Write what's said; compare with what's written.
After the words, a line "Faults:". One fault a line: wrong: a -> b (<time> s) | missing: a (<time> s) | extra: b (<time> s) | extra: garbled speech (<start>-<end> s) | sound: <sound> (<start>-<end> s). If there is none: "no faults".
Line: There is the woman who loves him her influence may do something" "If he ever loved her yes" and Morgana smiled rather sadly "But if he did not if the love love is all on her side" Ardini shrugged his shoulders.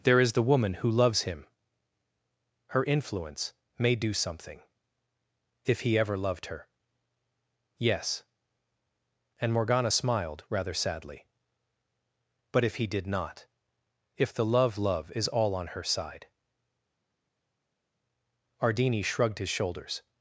There is the woman who loves him her influence may do something" "If he ever loved her yes" and Morgana smiled rather sadly "But if he did not if the love love is all on her side" Ardini shrugged his shoulders.
Faults:
no faults